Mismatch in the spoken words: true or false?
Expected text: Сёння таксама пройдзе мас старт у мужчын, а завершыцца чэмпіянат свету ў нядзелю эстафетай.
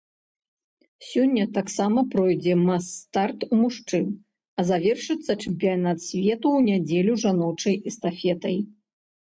true